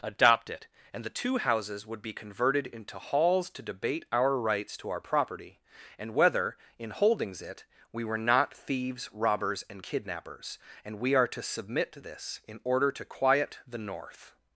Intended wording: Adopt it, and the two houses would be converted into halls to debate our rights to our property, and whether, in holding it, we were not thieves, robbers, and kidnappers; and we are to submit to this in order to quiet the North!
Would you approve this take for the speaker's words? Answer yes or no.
no